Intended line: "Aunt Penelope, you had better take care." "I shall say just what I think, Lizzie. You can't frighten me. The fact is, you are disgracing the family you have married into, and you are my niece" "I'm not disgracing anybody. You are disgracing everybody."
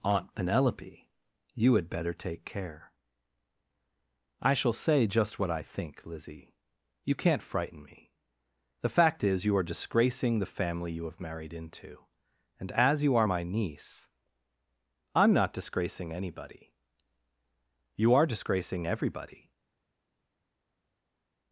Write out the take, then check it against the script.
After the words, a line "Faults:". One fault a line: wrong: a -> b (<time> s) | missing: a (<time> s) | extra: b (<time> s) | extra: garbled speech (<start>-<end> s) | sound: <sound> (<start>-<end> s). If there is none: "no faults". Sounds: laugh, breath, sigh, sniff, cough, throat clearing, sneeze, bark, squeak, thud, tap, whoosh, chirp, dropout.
"Aunt Penelope, you had better take care." "I shall say just what I think, Lizzie. You can't frighten me. The fact is, you are disgracing the family you have married into, and as you are my niece" "I'm not disgracing anybody. You are disgracing everybody."
Faults:
extra: as (12.7 s)